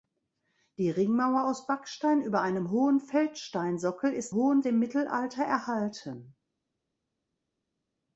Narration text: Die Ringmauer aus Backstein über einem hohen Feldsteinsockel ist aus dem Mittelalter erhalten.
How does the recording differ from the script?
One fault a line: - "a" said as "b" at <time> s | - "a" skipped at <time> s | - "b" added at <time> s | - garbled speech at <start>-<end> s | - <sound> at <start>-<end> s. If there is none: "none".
- "aus" said as "hohen" at 4.3 s